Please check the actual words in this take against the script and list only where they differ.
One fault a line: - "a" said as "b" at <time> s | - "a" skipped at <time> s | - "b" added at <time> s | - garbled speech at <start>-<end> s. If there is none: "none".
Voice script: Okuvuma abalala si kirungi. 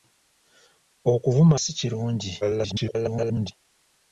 - "abalala" skipped at 1.6 s
- garbled speech at 2.4-3.5 s